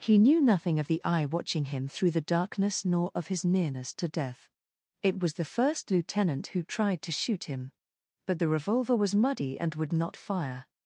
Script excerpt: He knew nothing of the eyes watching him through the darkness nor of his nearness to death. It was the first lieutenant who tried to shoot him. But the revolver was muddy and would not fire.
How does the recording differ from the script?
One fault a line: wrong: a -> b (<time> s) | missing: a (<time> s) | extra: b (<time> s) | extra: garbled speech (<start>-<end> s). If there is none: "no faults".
wrong: eyes -> eye (1.0 s)